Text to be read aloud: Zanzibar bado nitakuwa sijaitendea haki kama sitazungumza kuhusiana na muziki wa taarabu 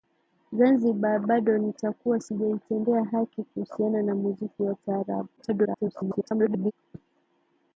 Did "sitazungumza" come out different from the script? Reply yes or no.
yes